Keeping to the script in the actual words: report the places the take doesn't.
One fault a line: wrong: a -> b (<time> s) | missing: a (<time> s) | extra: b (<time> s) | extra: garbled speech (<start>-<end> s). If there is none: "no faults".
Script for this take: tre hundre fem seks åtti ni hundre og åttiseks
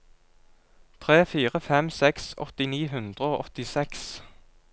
wrong: hundre -> fire (1.3 s)